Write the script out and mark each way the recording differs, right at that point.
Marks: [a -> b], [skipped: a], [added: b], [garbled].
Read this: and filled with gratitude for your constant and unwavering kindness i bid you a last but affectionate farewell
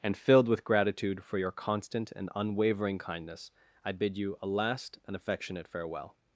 and filled with gratitude for your constant and unwavering kindness i bid you a last [but -> and] affectionate farewell